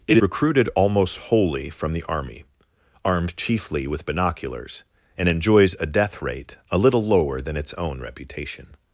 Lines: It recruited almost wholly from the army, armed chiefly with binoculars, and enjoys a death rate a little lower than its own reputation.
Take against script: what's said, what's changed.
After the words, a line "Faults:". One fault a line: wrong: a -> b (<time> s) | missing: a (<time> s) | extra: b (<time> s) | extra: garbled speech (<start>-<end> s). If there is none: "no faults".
It recruited almost wholly from the army, armed chiefly with binoculars, and enjoys a death rate a little lower than its own reputation.
Faults:
no faults